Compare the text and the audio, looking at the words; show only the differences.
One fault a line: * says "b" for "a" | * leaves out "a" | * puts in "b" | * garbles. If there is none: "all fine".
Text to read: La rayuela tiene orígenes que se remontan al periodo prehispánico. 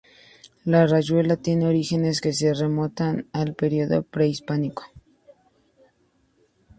all fine